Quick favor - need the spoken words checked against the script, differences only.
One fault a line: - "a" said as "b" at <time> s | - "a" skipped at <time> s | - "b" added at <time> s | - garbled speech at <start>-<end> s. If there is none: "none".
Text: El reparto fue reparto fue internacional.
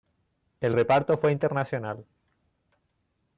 - "reparto fue" skipped at 1.3 s